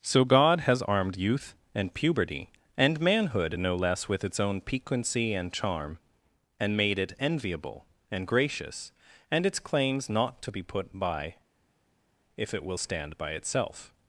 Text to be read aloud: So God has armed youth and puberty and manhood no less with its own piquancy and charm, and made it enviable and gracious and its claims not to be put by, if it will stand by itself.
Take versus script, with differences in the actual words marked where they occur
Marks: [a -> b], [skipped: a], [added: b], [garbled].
So God has armed youth and puberty and manhood no less with its own piquancy and charm, and made it enviable and gracious and its claims not to be put by, if it will stand by itself.